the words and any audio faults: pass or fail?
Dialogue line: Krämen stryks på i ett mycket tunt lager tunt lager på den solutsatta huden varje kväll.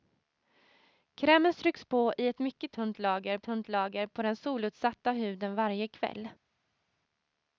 pass